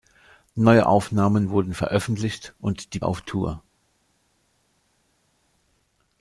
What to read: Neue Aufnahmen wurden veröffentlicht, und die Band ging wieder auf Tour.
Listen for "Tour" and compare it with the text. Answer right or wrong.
right